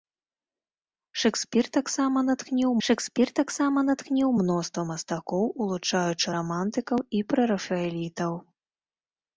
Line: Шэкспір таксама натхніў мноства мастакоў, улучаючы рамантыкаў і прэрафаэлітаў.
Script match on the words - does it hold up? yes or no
no